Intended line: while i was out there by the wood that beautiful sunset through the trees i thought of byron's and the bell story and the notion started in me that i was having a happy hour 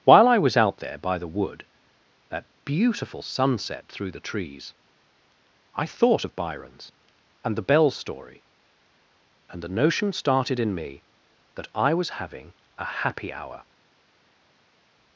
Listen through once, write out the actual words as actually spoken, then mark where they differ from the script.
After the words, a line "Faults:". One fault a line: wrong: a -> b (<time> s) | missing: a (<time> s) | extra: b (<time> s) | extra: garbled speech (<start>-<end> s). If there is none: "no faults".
while i was out there by the wood that beautiful sunset through the trees i thought of byron's and the bell story and the notion started in me that i was having a happy hour
Faults:
no faults